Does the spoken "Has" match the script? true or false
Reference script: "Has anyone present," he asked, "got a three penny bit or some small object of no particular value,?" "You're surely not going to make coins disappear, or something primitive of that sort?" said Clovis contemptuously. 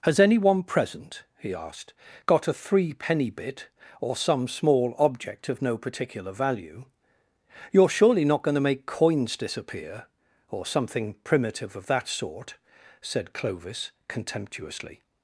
true